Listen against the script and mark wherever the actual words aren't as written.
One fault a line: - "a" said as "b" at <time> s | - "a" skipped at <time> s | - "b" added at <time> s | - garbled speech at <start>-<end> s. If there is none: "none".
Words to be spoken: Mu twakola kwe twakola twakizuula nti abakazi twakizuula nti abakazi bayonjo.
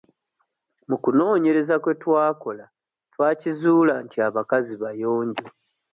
- "twakola" said as "kunoonyereza" at 1.0 s
- "twakizuula nti abakazi" skipped at 4.7 s